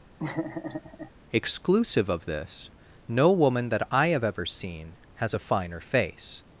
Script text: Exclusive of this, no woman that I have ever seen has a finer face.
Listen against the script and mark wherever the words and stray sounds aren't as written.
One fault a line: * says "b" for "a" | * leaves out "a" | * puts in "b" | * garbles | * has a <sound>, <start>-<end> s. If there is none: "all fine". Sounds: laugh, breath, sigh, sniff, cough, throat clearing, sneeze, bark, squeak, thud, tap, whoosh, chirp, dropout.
* has a laugh, 0.2-1.1 s